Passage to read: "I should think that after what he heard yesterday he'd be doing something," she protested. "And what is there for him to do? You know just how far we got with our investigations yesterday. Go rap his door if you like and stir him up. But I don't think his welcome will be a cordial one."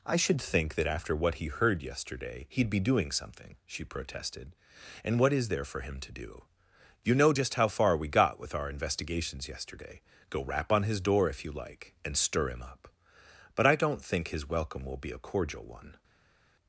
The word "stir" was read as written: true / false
true